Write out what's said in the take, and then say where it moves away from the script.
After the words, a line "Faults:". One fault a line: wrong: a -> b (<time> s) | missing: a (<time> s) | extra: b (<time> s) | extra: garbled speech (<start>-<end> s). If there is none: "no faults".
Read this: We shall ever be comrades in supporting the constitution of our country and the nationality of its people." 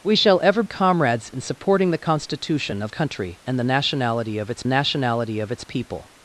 We shall ever comrades in supporting the constitution of country and the nationality of its nationality of its people."
Faults:
missing: be (0.6 s)
missing: our (2.9 s)
extra: nationality of its (4.6 s)